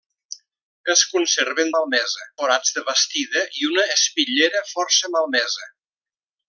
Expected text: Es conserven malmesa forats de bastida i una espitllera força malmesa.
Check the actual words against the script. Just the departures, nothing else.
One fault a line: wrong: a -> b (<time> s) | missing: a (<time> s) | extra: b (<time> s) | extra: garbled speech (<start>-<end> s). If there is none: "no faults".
no faults